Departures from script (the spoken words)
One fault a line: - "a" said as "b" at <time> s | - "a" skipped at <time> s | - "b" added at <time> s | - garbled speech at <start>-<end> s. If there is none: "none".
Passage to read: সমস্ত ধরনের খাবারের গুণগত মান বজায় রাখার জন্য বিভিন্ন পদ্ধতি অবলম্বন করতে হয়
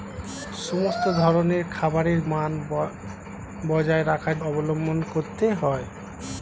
- "গুণগত" skipped at 2.2 s
- "জন্য বিভিন্ন পদ্ধতি" skipped at 4.4 s